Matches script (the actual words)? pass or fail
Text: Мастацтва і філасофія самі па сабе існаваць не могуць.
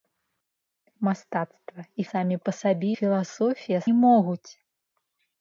fail